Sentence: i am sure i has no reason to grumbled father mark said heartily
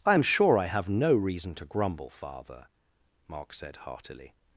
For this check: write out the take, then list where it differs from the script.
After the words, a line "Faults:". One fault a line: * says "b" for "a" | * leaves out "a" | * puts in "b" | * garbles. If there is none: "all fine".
i am sure i have no reason to grumble father mark said heartily
Faults:
* says "have" for "has"
* says "grumble" for "grumbled"